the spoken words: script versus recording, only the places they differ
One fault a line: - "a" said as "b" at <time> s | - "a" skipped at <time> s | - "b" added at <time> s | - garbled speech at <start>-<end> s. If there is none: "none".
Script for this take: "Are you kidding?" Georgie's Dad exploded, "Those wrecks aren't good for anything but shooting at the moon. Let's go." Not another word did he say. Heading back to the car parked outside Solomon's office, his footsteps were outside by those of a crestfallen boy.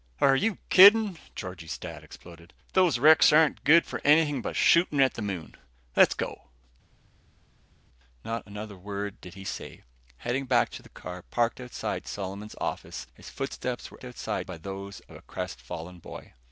none